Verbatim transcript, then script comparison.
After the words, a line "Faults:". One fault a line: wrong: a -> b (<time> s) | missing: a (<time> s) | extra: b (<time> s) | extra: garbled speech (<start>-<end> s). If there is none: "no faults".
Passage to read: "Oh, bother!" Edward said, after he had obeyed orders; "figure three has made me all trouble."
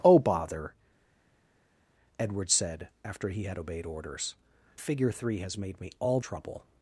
"Oh, bother!" Edward said, after he had obeyed orders; "figure three has made me all trouble."
Faults:
no faults